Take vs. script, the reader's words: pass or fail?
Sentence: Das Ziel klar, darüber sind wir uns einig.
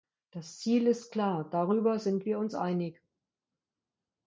fail